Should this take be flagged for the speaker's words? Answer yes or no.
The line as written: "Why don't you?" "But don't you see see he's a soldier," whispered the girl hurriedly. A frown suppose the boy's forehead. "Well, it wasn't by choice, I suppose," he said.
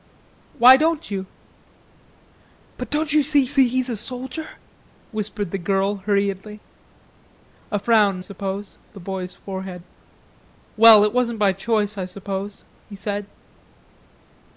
no